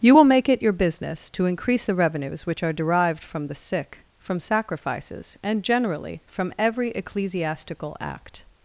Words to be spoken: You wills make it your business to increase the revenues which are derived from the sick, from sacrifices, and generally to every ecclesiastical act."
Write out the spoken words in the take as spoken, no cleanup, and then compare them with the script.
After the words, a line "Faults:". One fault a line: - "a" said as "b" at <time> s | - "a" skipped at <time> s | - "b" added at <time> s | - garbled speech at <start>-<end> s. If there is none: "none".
You will make it your business to increase the revenues which are derived from the sick, from sacrifices, and generally from every ecclesiastical act."
Faults:
- "wills" said as "will" at 0.1 s
- "to" said as "from" at 6.3 s